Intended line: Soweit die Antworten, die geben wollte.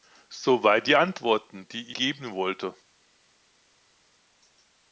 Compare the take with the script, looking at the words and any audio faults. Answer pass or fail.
pass